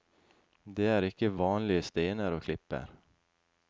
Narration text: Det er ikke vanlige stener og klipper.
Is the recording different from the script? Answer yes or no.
no